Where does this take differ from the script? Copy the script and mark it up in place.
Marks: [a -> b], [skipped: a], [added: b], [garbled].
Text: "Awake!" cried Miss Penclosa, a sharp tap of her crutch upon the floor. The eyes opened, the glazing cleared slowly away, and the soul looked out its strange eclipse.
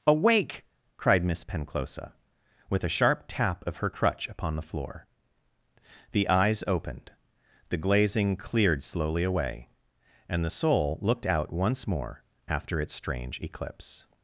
"Awake!" cried Miss Penclosa, [added: with] a sharp tap of her crutch upon the floor. The eyes opened, the glazing cleared slowly away, and the soul looked out [added: once more after] its strange eclipse.